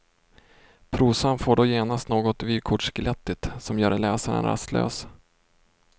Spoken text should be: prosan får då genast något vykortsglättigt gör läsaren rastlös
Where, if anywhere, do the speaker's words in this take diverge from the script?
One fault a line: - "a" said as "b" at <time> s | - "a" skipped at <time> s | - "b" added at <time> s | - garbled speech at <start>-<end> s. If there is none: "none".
- "som" added at 3.6 s